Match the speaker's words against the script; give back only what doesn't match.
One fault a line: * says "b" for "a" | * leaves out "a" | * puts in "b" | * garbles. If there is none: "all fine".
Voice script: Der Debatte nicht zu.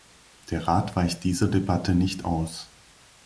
* puts in "Rat weicht dieser"
* says "aus" for "zu"